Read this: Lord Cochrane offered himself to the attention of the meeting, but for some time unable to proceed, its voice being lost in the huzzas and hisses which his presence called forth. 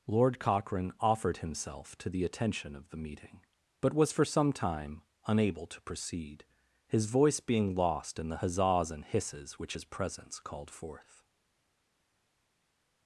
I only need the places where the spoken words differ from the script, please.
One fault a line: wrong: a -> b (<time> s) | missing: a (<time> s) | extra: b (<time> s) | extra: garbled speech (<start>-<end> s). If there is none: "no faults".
extra: was (3.9 s)
wrong: its -> his (6.9 s)